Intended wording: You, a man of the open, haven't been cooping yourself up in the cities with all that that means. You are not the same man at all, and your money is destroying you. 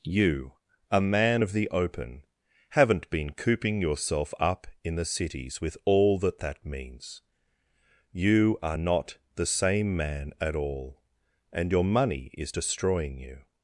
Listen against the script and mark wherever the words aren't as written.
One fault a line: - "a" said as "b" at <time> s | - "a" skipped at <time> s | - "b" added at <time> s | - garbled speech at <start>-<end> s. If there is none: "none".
none